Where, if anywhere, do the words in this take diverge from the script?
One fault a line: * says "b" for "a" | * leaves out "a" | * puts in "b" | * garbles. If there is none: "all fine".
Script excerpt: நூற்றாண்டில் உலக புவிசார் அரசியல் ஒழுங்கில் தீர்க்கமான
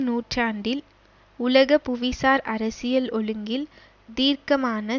all fine